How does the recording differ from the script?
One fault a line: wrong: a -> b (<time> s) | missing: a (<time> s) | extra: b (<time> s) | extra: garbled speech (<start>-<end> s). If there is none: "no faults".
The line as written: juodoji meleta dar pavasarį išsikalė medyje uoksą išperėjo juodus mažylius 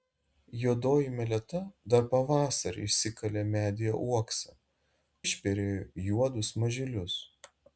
no faults